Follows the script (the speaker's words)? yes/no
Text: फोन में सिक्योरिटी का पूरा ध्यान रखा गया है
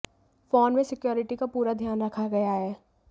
yes